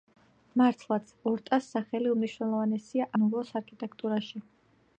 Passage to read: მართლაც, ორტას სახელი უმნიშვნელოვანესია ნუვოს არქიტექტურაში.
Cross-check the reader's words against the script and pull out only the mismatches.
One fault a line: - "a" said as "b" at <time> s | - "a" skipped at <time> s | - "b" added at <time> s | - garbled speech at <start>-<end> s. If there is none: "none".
none